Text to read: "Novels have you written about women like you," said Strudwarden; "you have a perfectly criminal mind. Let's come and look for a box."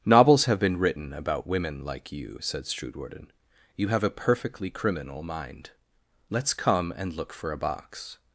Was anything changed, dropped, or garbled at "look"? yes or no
no